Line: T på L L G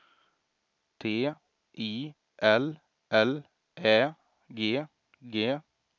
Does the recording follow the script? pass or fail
fail